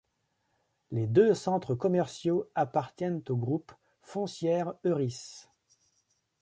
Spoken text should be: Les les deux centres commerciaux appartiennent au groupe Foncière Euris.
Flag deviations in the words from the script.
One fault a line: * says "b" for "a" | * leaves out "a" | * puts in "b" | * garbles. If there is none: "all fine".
* leaves out "les"